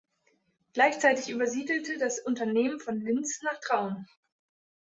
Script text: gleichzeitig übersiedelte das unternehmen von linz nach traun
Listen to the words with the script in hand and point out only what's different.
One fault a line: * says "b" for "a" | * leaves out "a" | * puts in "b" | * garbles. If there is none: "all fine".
all fine